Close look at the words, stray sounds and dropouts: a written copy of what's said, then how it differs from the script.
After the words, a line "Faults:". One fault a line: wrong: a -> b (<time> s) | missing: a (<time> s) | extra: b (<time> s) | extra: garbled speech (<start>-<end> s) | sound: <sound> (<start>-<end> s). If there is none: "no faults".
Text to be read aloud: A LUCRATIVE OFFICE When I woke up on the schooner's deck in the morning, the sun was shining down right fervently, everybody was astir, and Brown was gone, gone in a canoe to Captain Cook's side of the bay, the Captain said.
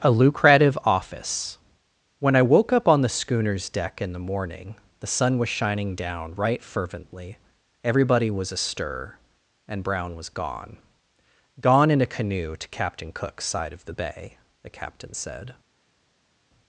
A LUCRATIVE OFFICE When I woke up on the schooner's deck in the morning, the sun was shining down right fervently, everybody was astir, and Brown was gone, gone in a canoe to Captain Cook's side of the bay, the Captain said.
Faults:
no faults